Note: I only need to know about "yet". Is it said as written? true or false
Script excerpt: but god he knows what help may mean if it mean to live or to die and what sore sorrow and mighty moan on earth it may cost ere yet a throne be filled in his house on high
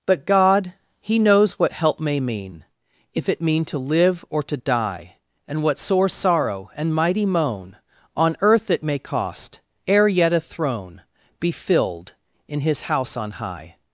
true